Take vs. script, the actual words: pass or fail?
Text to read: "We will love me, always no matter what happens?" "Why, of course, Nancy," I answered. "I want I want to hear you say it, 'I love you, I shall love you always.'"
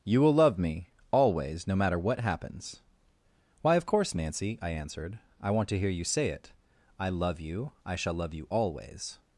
fail